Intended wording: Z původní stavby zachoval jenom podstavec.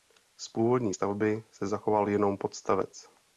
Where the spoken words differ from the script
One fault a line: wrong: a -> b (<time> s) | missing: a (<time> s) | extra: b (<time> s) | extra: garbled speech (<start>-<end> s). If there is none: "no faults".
extra: se (1.5 s)